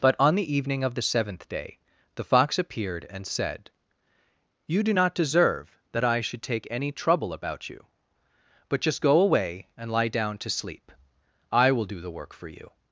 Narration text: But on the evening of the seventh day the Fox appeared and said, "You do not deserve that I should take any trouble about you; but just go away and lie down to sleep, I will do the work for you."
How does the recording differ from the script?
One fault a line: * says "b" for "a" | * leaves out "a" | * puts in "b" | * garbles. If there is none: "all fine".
all fine